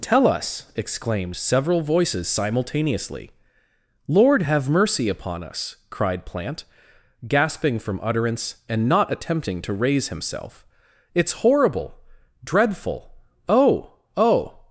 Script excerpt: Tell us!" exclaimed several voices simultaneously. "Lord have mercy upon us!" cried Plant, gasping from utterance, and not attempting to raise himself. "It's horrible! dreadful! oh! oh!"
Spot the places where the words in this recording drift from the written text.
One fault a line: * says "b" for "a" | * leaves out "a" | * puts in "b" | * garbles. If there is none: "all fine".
all fine